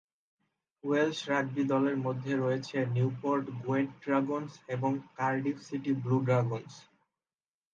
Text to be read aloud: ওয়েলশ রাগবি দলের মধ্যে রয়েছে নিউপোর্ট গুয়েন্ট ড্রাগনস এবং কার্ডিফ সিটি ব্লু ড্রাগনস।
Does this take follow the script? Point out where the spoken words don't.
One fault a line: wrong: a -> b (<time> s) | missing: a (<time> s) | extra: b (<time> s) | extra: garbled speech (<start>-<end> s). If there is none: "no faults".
no faults